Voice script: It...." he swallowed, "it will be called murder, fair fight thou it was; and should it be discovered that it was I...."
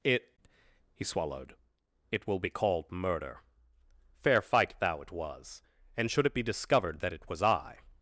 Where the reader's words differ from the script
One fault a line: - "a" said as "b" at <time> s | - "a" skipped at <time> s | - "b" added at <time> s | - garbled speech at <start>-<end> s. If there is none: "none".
none